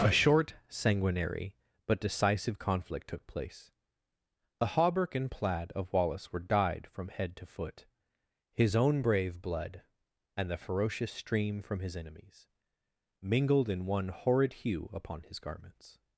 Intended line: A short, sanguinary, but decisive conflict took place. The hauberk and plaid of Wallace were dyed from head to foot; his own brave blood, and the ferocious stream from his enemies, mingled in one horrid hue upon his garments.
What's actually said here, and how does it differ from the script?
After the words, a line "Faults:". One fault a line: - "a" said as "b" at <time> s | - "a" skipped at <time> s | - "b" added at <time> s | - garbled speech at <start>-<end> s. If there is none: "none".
A short, sanguinary, but decisive conflict took place. The hauberk and plaid of Wallace were dyed from head to foot; his own brave blood, and the ferocious stream from his enemies, mingled in one horrid hue upon his garments.
Faults:
none